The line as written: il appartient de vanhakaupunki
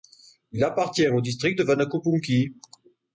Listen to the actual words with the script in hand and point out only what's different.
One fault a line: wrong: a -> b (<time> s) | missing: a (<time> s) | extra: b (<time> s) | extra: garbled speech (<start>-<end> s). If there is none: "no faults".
extra: au district (1.1 s)